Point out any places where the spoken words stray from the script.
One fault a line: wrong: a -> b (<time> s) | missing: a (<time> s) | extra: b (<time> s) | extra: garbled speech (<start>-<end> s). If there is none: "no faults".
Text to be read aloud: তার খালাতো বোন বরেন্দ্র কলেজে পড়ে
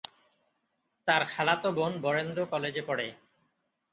no faults